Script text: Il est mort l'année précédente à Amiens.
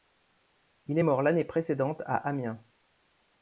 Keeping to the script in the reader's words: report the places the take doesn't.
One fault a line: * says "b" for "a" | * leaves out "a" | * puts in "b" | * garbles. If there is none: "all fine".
all fine